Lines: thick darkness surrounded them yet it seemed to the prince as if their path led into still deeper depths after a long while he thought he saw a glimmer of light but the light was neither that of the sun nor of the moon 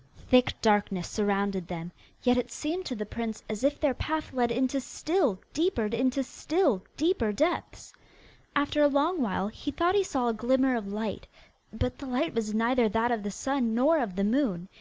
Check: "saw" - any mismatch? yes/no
no